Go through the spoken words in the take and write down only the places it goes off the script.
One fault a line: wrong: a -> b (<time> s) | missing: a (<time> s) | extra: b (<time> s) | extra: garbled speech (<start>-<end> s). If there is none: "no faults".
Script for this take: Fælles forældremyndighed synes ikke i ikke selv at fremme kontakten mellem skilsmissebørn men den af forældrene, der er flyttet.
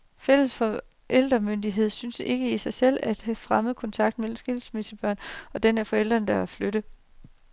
wrong: ikke -> sig (2.6 s)
wrong: men -> og (5.5 s)